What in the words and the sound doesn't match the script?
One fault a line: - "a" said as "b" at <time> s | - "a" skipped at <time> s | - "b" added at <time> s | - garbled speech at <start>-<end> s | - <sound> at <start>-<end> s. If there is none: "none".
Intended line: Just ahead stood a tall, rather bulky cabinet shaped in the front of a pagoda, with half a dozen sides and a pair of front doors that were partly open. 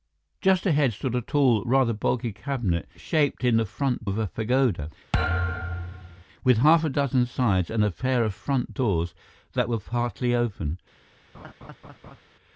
- thud at 5.1-6.2 s
- laugh at 11.3-12.2 s